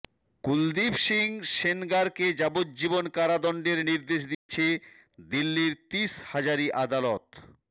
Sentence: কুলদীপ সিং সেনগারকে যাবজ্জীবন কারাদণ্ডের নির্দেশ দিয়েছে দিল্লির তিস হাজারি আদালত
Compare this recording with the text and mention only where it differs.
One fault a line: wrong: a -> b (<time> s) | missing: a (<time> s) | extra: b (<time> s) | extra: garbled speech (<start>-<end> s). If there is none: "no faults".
no faults